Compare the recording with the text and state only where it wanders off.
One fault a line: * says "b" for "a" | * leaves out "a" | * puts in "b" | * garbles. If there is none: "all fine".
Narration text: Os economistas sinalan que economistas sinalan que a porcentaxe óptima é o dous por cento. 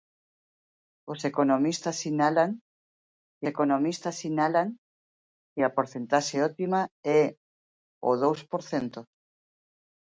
all fine